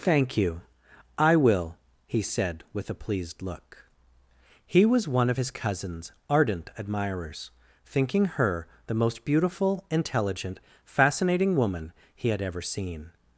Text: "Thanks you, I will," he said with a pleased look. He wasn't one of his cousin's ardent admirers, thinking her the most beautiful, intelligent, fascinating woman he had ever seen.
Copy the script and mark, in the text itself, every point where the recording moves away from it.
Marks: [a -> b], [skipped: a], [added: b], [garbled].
["Thanks -> Thank] you, I will," he said with a pleased look. He [wasn't -> was] one of his cousin's ardent admirers, thinking her the most beautiful, intelligent, fascinating woman he had ever seen.